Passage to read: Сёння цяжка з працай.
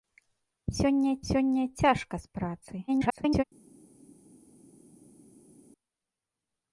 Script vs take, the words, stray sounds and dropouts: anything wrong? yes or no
yes